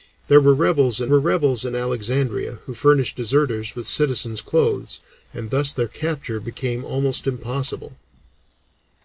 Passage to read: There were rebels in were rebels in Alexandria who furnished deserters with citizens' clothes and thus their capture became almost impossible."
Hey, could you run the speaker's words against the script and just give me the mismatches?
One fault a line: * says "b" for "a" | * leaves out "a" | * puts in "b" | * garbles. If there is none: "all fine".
all fine